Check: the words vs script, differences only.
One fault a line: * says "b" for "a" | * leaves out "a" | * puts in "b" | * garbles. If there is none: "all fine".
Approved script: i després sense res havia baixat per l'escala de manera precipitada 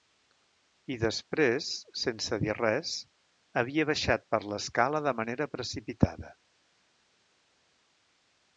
* puts in "dir"